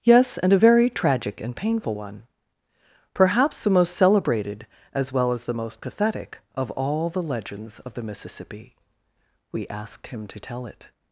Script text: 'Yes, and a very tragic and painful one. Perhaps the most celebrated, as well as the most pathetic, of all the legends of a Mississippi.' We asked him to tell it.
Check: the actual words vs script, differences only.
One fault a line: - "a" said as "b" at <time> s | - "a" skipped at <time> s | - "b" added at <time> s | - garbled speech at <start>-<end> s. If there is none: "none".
- "a" said as "the" at 7.9 s